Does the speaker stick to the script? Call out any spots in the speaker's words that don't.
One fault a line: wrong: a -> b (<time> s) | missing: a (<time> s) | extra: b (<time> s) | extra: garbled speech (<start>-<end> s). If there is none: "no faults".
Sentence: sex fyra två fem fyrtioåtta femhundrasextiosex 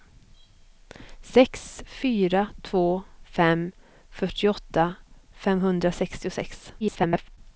extra: garbled speech (6.8-7.4 s)